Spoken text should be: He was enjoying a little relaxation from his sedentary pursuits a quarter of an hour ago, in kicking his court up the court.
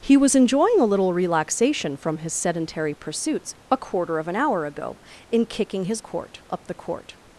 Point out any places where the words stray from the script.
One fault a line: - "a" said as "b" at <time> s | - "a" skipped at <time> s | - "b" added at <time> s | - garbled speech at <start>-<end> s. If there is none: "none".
none